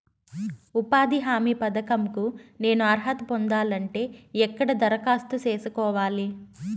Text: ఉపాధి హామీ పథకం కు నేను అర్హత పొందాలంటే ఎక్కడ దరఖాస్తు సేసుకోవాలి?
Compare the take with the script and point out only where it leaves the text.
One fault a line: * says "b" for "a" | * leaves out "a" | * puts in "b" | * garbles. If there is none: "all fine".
all fine